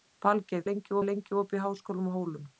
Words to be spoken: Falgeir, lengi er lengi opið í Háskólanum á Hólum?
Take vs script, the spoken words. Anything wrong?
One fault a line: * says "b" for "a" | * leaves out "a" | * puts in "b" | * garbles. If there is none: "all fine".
all fine